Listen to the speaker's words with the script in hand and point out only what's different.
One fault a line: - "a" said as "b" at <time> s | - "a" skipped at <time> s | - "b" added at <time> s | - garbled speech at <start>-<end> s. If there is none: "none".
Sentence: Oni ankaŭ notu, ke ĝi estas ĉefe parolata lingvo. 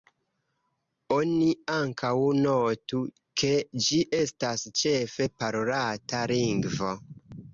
none